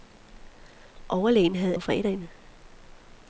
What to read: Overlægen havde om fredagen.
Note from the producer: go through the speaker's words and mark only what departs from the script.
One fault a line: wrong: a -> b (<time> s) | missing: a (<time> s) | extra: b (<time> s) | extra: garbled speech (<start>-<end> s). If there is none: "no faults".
no faults